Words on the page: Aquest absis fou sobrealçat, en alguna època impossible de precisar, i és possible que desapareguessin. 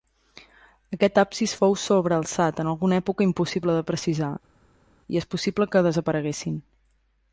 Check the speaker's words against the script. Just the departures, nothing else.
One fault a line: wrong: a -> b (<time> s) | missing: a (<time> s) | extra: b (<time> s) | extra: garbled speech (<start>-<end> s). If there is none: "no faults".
no faults